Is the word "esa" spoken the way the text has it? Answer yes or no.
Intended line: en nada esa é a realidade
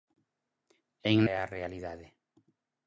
no